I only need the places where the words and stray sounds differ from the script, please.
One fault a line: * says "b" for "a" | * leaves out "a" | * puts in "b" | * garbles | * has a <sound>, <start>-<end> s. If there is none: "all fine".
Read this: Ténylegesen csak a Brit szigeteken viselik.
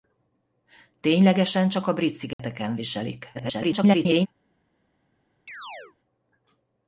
* has a dropout, 2.3-2.4 s
* garbles
* has a chirp, 5.5-6.0 s